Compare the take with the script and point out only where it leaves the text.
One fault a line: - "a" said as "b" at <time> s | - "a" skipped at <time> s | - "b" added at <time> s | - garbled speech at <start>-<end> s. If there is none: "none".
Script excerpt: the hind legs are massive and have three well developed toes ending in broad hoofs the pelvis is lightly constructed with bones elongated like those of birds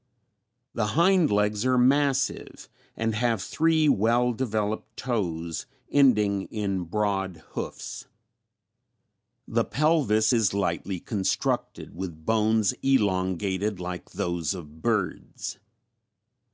none